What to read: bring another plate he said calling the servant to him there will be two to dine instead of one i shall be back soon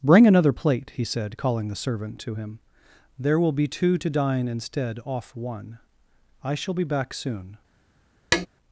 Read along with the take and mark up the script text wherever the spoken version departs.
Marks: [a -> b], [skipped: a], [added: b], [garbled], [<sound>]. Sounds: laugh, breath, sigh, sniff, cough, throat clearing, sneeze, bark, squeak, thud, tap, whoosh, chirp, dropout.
bring another plate he said calling the servant to him there will be two to dine instead [of -> off] one i shall be back soon [tap]